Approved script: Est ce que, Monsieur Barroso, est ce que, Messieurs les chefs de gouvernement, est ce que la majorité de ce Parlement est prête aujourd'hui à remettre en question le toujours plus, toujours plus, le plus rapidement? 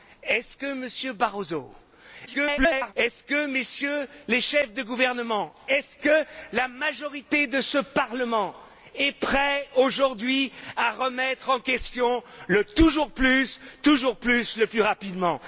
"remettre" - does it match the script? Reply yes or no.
yes